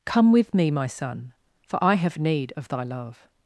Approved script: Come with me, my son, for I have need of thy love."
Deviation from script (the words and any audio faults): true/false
false